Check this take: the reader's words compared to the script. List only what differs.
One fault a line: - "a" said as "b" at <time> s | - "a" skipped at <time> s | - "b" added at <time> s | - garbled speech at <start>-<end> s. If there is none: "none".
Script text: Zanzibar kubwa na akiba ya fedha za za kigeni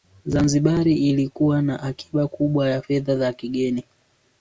- "kubwa" said as "ilikuwa" at 0.9 s
- "kubwa" added at 2.3 s
- "za" skipped at 3.3 s